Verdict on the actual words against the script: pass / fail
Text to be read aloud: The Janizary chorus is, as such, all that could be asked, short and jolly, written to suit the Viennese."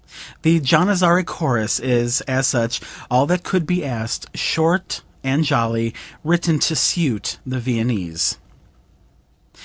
pass